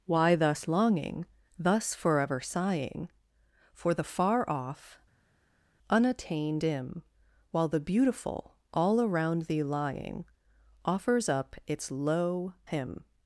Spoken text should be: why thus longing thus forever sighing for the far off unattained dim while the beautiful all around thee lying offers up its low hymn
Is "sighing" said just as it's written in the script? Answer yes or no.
yes